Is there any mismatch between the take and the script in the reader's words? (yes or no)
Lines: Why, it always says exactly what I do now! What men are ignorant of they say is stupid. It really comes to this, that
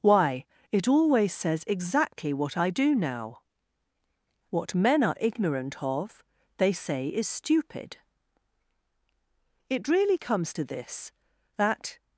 no